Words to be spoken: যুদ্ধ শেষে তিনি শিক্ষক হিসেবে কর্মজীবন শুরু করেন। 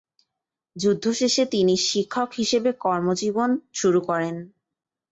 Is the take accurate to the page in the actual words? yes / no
yes